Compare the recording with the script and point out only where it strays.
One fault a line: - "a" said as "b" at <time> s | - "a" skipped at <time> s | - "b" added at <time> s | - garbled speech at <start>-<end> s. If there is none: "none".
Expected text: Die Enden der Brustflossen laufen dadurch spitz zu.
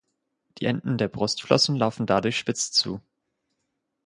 none